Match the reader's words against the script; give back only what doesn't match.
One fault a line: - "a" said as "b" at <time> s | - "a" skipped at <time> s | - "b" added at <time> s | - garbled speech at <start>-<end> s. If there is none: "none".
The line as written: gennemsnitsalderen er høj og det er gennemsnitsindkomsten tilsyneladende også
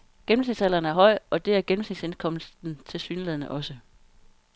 none